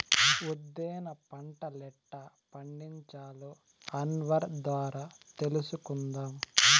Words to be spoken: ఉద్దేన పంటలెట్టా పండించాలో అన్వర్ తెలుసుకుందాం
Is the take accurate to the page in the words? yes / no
no